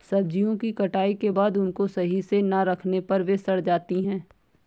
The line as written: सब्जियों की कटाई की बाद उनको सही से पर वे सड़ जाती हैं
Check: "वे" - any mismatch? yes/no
no